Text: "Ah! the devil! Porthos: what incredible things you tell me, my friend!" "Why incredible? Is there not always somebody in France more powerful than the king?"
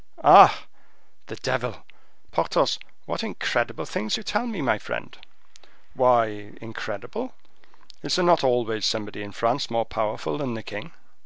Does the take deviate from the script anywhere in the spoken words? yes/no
no